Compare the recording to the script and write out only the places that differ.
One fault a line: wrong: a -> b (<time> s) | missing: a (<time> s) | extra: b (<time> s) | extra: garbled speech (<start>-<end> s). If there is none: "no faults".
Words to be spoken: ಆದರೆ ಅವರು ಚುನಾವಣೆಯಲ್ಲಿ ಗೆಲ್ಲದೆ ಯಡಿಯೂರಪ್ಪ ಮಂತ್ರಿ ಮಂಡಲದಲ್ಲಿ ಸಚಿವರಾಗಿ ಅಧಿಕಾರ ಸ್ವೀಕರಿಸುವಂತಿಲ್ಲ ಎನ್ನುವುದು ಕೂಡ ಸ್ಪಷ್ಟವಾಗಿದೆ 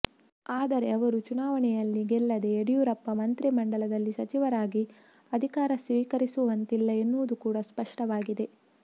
no faults